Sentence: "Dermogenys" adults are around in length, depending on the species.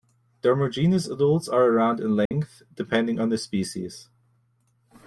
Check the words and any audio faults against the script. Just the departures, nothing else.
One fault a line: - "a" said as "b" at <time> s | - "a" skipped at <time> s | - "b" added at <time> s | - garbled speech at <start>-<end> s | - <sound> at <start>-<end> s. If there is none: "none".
- dropout at 2.3-2.3 s